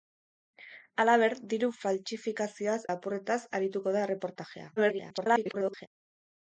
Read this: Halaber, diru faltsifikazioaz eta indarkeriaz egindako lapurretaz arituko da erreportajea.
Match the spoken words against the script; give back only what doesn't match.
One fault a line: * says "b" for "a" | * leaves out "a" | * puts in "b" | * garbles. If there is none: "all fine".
* leaves out "eta indarkeriaz egindako"
* garbles